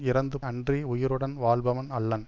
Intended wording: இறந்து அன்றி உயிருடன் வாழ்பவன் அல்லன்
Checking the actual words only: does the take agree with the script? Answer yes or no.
yes